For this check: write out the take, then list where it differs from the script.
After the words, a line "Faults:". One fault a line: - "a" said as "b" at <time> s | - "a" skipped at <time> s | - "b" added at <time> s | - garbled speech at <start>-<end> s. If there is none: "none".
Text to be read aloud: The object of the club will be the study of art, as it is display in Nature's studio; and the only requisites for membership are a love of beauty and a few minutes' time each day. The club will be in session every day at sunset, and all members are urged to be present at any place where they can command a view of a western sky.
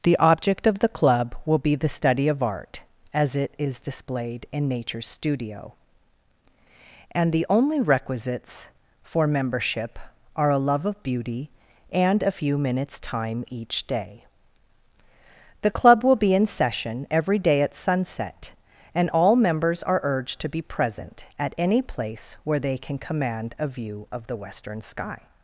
The object of the club will be the study of art, as it is displayed in Nature's studio; and the only requisites for membership are a love of beauty and a few minutes' time each day. The club will be in session every day at sunset, and all members are urged to be present at any place where they can command a view of the western sky.
Faults:
- "display" said as "displayed" at 3.8 s
- "a" said as "the" at 24.3 s